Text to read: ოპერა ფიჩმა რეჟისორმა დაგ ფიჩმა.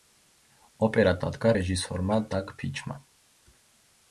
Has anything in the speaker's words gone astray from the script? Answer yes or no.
yes